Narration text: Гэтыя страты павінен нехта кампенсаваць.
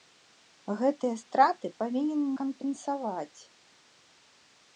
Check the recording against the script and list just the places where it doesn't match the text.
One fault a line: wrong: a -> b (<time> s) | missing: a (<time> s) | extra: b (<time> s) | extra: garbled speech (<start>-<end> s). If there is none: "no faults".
missing: нехта (2.2 s)